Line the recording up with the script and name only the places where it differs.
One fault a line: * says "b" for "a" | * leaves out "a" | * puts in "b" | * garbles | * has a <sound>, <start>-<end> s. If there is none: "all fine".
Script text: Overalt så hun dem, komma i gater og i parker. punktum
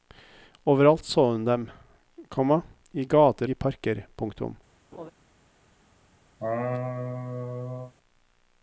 * leaves out "og"
* has a laugh, 4.9-5.1 s
* has a laugh, 6.4-7.9 s